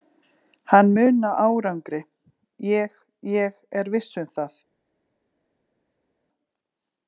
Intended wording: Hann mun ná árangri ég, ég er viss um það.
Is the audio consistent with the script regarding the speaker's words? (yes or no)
yes